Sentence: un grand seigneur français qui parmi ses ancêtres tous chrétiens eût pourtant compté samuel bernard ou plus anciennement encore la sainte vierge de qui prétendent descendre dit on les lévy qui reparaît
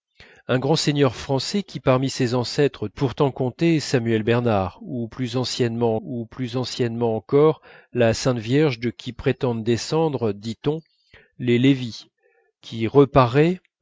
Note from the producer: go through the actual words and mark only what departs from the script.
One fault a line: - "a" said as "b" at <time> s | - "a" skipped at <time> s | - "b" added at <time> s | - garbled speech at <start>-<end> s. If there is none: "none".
- "tous chrétiens eût" skipped at 2.9 s
- "ou plus anciennement" added at 6.0 s